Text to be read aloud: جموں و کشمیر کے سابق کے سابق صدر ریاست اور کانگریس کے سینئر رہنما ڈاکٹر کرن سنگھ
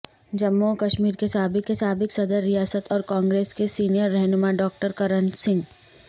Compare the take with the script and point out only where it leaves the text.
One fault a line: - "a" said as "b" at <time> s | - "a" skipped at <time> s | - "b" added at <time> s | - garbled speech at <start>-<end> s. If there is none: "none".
none